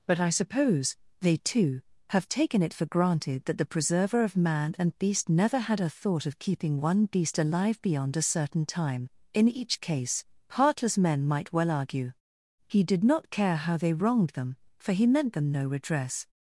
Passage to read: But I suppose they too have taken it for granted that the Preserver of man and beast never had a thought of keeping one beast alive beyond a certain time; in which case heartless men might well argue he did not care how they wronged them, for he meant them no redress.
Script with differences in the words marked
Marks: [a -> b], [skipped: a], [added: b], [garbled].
But I suppose they too have taken it for granted that the Preserver of man and beast never had a thought of keeping one beast alive beyond a certain time; in [which -> each] case heartless men might well argue he did not care how they wronged them, for he meant them no redress.